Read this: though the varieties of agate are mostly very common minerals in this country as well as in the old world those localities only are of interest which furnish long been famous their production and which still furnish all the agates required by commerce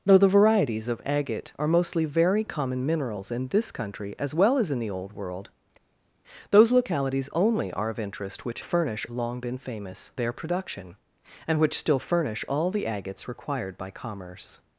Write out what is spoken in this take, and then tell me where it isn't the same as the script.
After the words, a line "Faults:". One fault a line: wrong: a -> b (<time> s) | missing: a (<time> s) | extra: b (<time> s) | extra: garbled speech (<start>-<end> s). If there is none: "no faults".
though the varieties of agate are mostly very common minerals in this country as well as in the old world those localities only are of interest which furnish long been famous their production and which still furnish all the agates required by commerce
Faults:
no faults